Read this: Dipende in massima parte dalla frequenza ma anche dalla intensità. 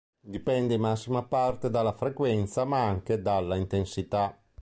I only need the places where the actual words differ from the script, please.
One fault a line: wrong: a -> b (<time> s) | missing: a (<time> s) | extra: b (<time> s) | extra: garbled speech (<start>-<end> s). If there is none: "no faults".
no faults